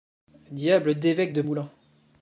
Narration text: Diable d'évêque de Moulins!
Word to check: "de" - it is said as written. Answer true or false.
true